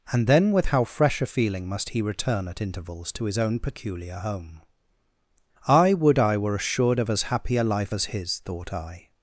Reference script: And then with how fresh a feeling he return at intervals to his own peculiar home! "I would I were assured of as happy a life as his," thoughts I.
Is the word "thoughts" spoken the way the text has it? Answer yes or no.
no